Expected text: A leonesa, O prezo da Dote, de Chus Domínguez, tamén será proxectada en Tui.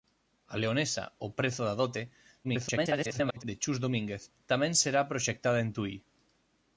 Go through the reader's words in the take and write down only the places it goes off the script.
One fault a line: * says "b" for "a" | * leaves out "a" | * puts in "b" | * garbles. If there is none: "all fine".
* garbles